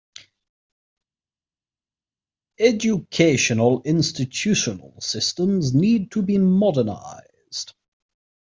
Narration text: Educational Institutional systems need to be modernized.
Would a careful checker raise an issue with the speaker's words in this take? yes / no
no